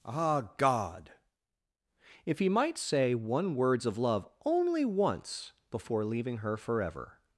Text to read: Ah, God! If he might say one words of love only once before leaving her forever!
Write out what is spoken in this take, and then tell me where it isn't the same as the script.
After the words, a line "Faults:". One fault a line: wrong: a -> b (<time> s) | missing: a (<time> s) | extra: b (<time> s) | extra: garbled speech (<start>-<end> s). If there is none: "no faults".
Ah, God! If he might say one words of love only once before leaving her forever!
Faults:
no faults